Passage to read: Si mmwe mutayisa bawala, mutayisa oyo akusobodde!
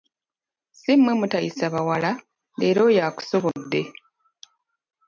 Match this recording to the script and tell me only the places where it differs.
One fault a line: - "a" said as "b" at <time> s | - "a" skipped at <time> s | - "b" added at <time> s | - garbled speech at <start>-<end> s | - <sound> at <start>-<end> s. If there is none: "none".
- "mutayisa" said as "leero" at 2.6 s